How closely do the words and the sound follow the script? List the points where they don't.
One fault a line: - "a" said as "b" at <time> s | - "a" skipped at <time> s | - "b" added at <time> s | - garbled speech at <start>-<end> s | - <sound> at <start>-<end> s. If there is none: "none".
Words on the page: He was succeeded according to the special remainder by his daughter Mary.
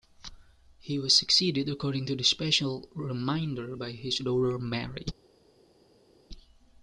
none